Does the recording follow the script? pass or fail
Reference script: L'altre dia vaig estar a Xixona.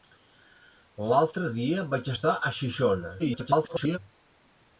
fail